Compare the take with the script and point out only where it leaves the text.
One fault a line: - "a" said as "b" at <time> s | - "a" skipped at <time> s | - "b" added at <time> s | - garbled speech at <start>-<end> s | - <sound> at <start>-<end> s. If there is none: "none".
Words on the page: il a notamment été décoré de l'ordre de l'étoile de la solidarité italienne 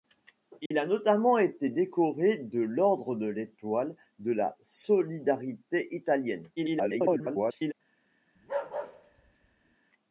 - dropout at 0.7-0.7 s
- garbled speech at 6.6-7.7 s
- bark at 8.4-9.8 s